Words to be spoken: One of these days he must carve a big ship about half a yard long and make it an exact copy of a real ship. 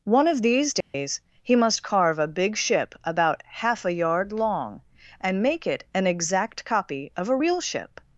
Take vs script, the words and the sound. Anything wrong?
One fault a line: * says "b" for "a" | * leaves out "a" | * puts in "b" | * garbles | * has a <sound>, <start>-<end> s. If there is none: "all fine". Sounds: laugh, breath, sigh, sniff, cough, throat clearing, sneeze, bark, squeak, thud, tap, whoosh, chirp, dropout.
* has a dropout, 0.8-0.9 s